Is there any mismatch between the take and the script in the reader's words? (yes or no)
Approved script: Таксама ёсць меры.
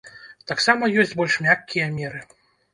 yes